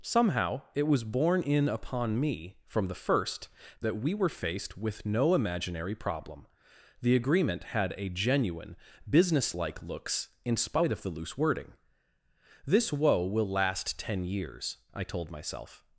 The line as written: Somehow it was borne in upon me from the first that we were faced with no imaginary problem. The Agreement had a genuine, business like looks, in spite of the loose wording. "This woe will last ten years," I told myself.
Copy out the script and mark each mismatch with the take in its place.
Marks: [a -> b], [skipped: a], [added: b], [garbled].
Somehow it was borne in upon me from the first that we were faced with no imaginary problem. The Agreement had a genuine, business like looks, in spite of the loose wording. "This woe will last ten years," I told myself.